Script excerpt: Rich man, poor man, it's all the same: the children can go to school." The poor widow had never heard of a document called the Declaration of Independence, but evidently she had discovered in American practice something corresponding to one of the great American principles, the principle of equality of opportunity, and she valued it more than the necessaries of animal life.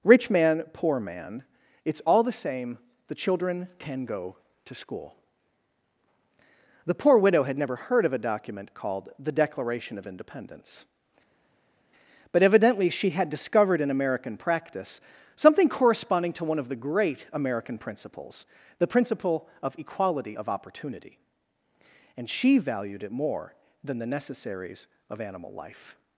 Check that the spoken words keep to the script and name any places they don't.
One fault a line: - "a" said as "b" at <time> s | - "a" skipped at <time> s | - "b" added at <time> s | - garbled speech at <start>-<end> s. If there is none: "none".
none